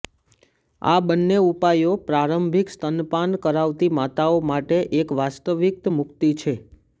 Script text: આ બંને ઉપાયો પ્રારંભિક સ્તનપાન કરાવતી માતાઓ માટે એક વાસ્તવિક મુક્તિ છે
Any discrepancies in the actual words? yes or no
no